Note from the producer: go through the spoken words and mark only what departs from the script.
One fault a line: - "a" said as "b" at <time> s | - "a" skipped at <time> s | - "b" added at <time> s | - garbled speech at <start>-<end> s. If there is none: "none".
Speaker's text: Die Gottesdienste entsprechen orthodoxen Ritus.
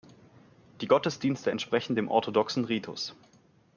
- "dem" added at 2.0 s